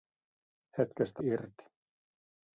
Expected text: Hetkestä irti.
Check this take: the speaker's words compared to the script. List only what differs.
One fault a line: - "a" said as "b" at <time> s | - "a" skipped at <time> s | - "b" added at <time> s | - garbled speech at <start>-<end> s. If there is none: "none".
none